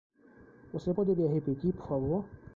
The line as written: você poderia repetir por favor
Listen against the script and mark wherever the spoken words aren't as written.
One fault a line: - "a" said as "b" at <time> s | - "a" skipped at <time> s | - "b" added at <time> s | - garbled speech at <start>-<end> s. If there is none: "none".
none